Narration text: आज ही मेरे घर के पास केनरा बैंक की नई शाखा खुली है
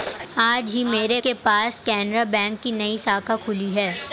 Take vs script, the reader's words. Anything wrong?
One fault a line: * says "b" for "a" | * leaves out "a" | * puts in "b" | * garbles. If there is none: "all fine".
* leaves out "घर"